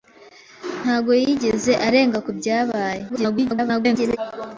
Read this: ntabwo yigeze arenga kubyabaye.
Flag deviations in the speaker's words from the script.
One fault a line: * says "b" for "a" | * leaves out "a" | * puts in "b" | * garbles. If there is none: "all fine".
* garbles